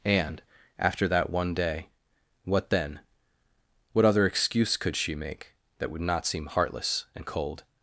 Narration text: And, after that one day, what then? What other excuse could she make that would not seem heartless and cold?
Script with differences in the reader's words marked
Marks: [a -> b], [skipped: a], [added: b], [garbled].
And, after that one day, what then? What other excuse could she make that would not seem heartless and cold?